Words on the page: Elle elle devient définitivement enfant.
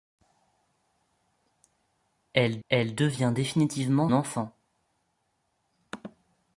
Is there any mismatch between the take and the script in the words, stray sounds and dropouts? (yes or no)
no